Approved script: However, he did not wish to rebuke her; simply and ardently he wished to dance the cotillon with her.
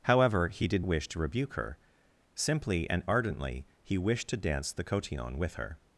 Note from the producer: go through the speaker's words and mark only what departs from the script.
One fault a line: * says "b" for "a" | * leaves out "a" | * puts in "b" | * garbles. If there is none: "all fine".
* leaves out "not"